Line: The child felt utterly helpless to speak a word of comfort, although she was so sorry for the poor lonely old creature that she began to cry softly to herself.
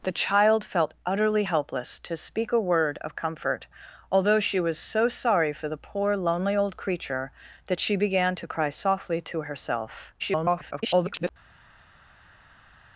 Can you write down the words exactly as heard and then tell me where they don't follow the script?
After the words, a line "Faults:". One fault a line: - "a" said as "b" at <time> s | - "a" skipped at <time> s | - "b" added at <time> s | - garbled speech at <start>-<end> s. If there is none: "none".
The child felt utterly helpless to speak a word of comfort, although she was so sorry for the poor lonely old creature that she began to cry softly to herself. [garbled]
Faults:
- garbled speech at 10.2-11.3 s